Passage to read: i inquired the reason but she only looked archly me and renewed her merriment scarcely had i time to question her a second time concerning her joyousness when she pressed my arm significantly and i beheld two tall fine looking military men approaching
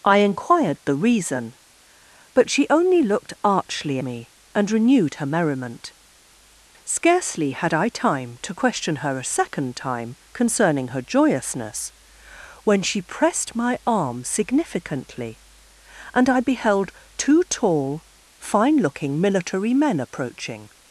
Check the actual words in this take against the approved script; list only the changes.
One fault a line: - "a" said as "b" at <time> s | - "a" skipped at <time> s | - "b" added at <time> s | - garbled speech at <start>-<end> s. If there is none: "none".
none